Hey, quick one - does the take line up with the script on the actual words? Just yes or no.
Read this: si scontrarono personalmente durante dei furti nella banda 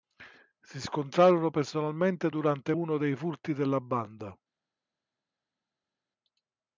no